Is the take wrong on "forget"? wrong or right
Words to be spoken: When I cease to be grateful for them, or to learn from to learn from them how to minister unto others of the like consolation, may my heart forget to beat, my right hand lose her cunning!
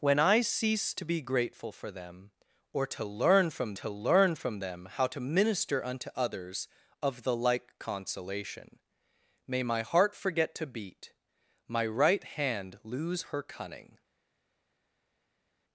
right